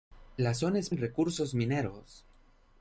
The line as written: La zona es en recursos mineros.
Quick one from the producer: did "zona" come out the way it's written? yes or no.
yes